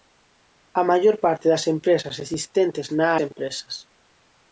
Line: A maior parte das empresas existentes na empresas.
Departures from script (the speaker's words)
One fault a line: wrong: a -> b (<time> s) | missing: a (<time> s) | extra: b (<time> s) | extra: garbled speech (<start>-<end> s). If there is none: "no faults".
no faults